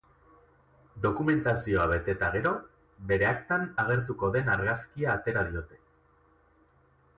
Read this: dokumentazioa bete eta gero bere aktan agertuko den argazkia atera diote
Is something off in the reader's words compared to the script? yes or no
no